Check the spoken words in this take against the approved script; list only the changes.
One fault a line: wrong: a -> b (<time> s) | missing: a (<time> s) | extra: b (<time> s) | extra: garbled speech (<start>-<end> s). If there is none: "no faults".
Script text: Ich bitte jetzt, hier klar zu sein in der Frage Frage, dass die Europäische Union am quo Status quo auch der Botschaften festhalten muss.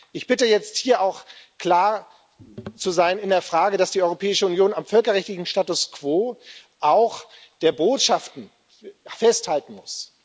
extra: auch (1.0 s)
missing: Frage (3.8 s)
wrong: quo -> völkerrechtlichen (4.8 s)